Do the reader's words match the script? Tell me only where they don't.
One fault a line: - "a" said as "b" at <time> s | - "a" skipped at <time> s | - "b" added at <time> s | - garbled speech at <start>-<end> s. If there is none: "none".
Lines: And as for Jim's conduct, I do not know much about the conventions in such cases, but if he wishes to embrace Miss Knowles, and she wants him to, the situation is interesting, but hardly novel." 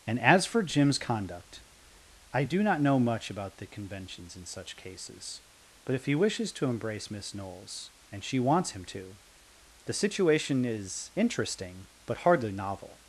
none